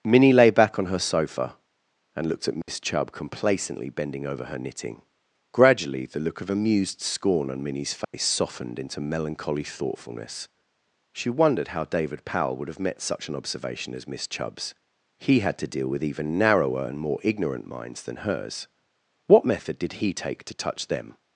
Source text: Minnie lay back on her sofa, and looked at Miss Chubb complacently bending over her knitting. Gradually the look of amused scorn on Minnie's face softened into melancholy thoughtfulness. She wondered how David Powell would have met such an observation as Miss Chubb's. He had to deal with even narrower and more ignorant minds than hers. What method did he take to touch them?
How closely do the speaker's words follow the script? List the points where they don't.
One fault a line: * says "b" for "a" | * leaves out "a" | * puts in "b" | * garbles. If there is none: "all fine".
all fine